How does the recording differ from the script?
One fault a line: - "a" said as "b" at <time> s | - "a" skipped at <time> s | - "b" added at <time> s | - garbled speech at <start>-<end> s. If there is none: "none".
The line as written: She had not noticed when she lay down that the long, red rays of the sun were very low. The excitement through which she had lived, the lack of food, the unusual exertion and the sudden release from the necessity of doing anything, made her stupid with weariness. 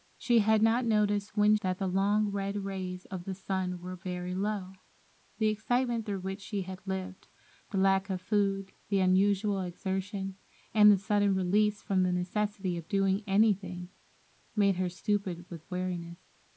- "she lay down" skipped at 1.6 s